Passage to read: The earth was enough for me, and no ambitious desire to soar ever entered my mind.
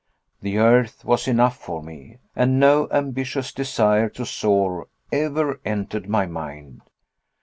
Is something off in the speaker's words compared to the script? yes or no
no